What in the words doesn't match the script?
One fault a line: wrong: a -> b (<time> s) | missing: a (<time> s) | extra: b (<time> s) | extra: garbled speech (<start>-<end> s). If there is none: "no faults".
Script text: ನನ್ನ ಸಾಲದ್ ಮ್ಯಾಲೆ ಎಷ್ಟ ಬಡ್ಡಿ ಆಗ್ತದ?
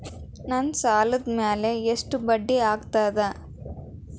no faults